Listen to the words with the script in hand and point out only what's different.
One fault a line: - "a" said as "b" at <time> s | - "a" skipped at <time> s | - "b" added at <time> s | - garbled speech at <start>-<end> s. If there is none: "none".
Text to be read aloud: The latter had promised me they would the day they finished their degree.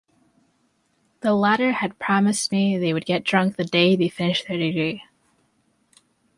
- "get drunk" added at 3.0 s